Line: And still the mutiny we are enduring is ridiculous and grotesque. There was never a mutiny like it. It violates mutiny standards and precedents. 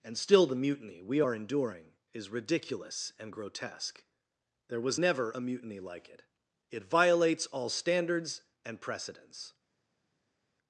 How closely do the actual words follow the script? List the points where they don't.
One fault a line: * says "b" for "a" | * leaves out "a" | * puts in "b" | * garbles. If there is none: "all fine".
* says "all" for "mutiny"